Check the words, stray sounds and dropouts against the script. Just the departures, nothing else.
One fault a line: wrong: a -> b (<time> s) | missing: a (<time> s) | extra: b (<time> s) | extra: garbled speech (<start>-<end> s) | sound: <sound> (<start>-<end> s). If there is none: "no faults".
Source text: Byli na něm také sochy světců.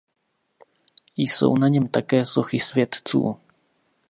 wrong: Byli -> Jsou (1.2 s)